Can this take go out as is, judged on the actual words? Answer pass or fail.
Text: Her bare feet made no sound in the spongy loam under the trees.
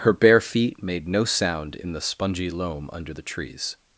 pass